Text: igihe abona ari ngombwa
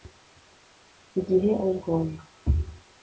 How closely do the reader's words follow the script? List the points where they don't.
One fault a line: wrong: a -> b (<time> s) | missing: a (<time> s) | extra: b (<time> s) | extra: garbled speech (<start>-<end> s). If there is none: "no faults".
missing: abona (1.5 s)